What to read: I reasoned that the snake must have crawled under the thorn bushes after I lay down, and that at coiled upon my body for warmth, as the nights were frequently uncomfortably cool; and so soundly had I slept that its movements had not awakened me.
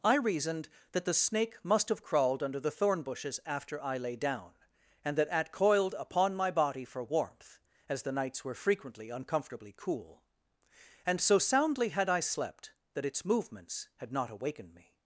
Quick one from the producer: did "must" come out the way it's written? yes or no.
yes